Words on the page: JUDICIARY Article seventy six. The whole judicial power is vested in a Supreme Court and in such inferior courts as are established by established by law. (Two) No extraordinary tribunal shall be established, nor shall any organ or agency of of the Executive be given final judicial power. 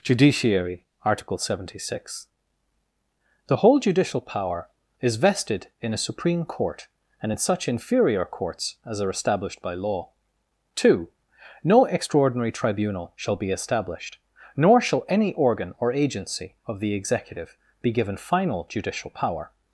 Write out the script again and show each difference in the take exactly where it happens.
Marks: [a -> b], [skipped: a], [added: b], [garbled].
JUDICIARY Article seventy six. The whole judicial power is vested in a Supreme Court and in such inferior courts as are established by [skipped: established by] law. (Two) No extraordinary tribunal shall be established, nor shall any organ or agency of [skipped: of] the Executive be given final judicial power.